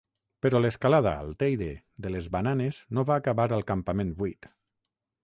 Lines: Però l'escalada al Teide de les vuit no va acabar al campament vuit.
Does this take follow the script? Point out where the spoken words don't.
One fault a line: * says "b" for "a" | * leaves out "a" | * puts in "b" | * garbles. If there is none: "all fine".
* says "bananes" for "vuit"